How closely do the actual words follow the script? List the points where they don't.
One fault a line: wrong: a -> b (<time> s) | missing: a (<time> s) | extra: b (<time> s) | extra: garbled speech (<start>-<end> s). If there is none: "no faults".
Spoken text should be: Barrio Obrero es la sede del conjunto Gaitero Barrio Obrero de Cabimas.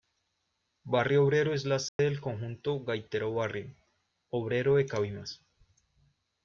no faults